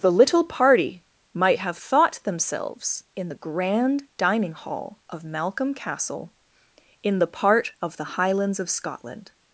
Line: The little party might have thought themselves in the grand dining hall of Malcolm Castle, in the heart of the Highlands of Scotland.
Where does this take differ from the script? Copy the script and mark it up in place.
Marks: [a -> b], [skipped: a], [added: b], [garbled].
The little party might have thought themselves in the grand dining hall of Malcolm Castle, in the [heart -> part] of the Highlands of Scotland.